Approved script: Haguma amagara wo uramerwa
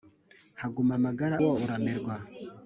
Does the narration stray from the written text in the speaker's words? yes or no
no